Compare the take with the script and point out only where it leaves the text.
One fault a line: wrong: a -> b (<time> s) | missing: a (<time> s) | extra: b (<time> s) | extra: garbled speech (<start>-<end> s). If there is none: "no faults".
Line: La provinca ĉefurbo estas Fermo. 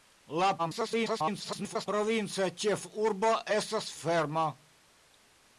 extra: garbled speech (0.6-1.9 s)